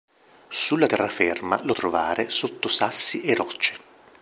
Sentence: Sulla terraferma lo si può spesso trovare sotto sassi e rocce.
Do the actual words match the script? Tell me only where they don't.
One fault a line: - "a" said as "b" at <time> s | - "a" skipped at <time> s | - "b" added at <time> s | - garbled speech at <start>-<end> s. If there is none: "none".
- "si può spesso" skipped at 1.7 s